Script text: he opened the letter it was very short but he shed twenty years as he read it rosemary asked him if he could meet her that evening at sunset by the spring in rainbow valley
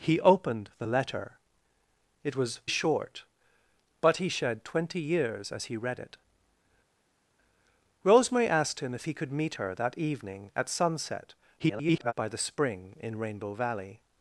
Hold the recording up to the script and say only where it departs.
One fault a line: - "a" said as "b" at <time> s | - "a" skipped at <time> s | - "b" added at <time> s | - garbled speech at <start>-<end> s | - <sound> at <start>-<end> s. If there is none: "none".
- "very" skipped at 2.6 s
- garbled speech at 11.6-12.1 s